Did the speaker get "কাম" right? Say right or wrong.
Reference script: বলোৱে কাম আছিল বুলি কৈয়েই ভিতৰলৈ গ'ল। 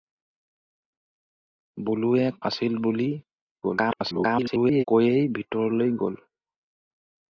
wrong